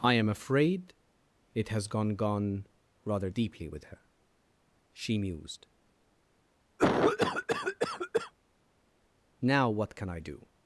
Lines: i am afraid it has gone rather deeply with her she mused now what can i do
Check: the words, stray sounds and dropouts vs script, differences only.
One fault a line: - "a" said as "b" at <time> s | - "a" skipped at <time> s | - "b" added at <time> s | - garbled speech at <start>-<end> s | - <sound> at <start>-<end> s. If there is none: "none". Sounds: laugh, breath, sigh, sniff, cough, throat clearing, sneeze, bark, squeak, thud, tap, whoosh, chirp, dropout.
- "gone" added at 2.1 s
- cough at 6.8-8.3 s